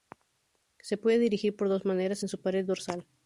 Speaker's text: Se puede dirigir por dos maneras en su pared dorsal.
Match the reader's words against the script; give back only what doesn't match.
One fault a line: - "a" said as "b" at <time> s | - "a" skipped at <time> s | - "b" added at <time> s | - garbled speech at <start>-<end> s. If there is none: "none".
none